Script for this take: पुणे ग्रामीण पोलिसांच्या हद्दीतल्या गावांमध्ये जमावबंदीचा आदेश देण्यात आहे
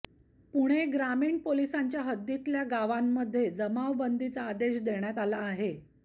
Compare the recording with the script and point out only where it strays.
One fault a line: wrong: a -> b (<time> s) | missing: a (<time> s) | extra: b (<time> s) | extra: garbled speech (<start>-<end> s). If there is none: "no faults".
extra: आला (5.2 s)